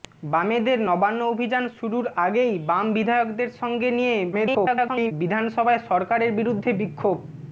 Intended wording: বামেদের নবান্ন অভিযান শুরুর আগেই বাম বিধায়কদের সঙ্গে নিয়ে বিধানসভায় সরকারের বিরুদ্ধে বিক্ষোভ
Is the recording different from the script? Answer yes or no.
yes